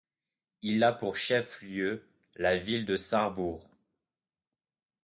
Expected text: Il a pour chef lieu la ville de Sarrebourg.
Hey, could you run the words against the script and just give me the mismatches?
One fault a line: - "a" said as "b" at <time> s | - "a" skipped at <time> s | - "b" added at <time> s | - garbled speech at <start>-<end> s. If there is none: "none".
none